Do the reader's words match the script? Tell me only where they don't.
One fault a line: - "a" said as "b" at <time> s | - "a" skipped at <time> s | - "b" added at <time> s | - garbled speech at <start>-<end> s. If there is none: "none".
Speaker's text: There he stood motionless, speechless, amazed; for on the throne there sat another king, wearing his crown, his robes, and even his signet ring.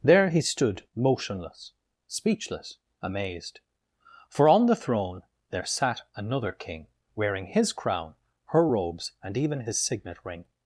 - "his" said as "her" at 8.5 s